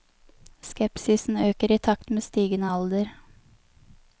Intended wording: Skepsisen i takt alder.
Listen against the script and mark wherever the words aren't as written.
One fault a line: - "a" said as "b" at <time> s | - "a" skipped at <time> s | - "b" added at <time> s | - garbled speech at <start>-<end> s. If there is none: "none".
- "øker" added at 1.5 s
- "med stigende" added at 2.1 s